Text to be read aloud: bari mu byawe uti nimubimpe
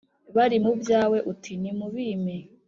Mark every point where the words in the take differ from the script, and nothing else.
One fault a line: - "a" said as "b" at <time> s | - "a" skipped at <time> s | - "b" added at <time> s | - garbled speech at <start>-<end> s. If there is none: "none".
none